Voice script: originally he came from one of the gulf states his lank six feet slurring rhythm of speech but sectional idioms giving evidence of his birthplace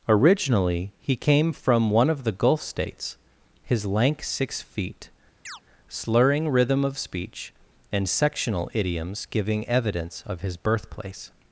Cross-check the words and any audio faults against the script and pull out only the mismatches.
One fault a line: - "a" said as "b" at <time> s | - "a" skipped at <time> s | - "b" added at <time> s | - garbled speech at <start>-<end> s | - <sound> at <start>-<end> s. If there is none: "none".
- chirp at 5.5-5.6 s
- "but" said as "and" at 7.9 s